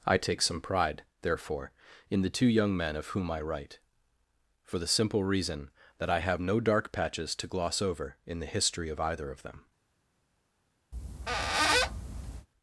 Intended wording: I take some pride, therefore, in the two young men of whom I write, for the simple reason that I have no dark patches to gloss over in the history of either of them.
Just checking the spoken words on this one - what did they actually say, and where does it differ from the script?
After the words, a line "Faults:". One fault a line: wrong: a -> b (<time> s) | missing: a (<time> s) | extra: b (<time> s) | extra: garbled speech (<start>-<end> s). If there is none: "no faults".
I take some pride, therefore, in the two young men of whom I write, for the simple reason that I have no dark patches to gloss over in the history of either of them.
Faults:
no faults